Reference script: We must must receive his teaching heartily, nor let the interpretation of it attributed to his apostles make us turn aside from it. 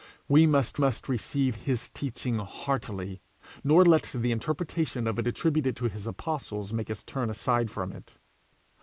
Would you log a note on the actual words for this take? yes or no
no